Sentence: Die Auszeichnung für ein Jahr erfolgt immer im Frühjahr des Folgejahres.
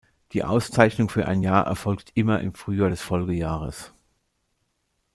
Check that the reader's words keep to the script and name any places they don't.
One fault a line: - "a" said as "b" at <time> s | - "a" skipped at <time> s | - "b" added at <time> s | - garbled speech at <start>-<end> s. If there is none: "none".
none